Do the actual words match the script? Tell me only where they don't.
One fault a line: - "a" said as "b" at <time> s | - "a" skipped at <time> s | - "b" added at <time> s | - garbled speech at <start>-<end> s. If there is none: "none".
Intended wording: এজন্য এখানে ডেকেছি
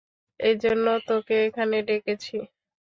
- "তোকে" added at 1.1 s